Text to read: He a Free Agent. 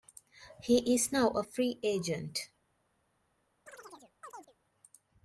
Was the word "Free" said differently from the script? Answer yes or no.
no